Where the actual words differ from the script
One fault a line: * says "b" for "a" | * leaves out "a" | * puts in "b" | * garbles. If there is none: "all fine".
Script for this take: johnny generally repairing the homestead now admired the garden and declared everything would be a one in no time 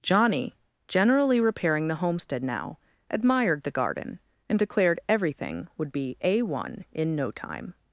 all fine